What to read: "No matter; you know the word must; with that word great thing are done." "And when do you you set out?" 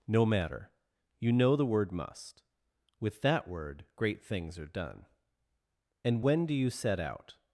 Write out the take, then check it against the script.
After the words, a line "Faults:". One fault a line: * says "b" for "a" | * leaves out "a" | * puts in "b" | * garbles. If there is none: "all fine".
"No matter; you know the word must; with that word great things are done." "And when do you set out?"
Faults:
* says "things" for "thing"
* leaves out "you"